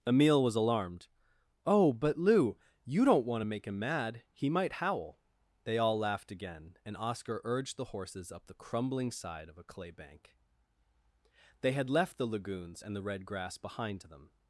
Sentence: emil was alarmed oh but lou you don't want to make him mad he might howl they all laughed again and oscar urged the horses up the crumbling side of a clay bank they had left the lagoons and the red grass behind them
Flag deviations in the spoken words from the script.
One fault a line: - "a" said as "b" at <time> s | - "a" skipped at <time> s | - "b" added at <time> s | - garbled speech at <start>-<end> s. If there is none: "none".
none